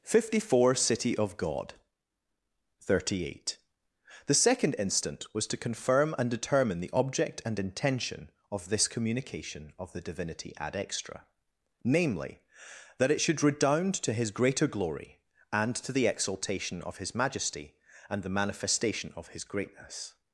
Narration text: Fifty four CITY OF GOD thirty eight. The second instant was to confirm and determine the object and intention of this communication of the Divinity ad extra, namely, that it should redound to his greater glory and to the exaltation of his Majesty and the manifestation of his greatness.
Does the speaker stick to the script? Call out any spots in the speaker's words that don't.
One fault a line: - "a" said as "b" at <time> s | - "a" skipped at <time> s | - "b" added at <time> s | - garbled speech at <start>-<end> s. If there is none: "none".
none